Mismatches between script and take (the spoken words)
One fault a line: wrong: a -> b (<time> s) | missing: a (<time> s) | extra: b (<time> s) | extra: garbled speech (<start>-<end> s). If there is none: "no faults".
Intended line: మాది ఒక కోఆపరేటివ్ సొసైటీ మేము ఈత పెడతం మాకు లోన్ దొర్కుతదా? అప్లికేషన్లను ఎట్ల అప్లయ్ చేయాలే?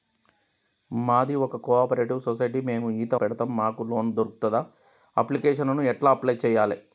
no faults